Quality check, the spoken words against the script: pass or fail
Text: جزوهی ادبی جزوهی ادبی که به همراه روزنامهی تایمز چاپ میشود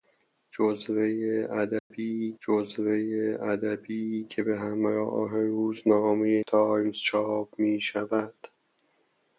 pass